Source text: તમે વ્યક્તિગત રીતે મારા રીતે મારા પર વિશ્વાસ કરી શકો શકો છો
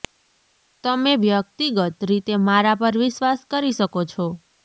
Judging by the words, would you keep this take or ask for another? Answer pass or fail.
fail